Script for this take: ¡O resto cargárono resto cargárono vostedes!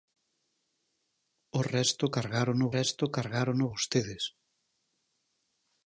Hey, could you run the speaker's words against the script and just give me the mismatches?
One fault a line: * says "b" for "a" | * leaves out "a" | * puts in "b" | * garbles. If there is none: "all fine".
all fine